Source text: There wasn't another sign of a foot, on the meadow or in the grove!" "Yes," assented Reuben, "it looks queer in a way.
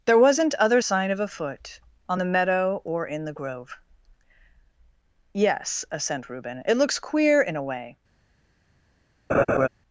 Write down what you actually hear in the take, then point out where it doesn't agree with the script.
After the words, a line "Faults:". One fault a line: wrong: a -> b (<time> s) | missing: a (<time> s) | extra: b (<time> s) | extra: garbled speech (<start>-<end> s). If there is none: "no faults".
There wasn't other sign of a foot, on the meadow or in the grove!" "Yes," assent Reuben, "it looks queer in a way.
Faults:
wrong: another -> other (0.6 s)
wrong: assented -> assent (5.9 s)